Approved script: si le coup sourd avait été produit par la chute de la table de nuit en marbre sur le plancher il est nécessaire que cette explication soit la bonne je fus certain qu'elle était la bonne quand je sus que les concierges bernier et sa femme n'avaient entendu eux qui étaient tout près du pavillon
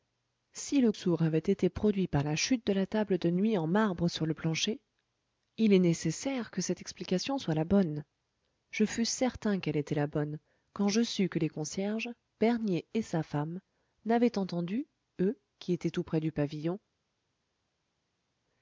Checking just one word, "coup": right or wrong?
wrong